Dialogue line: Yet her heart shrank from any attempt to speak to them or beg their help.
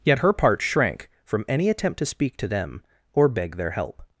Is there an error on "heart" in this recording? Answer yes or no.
yes